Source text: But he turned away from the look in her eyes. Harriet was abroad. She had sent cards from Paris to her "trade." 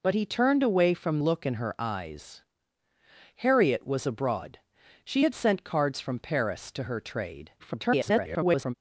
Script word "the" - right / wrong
wrong